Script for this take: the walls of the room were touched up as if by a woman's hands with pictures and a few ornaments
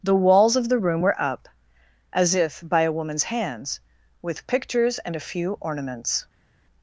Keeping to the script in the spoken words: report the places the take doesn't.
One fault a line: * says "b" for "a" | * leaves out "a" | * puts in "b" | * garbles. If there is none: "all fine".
* leaves out "touched"